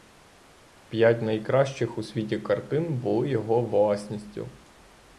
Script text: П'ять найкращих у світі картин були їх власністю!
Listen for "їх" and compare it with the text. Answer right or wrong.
wrong